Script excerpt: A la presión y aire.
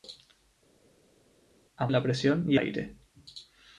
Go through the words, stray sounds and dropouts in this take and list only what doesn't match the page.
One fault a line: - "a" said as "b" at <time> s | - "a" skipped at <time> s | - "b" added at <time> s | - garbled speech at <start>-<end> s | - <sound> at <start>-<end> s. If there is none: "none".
none